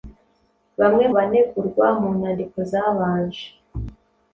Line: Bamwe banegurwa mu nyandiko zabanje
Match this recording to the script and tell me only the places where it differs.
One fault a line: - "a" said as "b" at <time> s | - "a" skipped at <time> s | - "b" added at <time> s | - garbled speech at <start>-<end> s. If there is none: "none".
none